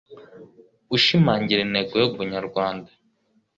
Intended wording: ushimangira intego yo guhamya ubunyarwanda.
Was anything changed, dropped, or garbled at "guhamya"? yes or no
yes